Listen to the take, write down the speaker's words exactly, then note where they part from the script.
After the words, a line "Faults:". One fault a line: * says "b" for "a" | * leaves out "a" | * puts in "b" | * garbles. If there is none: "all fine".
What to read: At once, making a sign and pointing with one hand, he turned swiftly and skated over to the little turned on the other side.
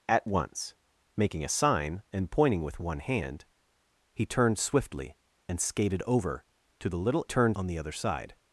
At once, making a sign and pointing with one hand, he turned swiftly and skated over to the little turned on the other side.
Faults:
all fine